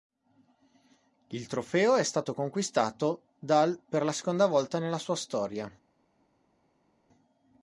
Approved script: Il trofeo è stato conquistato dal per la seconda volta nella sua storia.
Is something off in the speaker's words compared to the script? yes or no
no